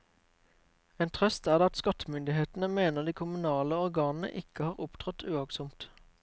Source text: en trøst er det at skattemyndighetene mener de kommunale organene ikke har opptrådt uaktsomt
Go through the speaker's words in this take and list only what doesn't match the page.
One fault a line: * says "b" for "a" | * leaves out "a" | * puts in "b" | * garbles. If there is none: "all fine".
all fine